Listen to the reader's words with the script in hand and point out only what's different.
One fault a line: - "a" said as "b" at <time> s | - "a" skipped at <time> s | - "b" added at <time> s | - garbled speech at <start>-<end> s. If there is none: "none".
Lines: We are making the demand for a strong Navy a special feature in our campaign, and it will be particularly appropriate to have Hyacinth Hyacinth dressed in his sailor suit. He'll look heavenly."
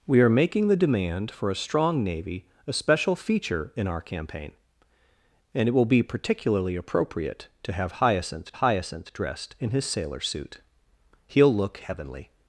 none